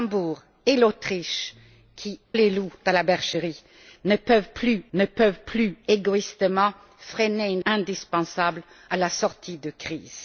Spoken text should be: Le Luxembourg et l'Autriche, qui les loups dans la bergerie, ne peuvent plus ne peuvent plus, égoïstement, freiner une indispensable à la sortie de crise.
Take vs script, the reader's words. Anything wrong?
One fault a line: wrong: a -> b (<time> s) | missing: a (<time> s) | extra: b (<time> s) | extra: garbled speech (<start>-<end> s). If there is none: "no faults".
no faults